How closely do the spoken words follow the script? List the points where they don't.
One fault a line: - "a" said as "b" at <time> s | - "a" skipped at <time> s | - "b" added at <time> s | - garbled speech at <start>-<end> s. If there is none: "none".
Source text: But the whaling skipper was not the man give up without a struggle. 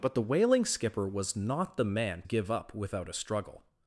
none